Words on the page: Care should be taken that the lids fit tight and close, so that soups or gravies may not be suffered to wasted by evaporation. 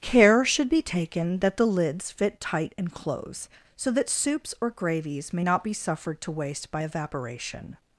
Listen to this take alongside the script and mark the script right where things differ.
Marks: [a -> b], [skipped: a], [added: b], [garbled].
Care should be taken that the lids fit tight and close, so that soups or gravies may not be suffered to [wasted -> waste] by evaporation.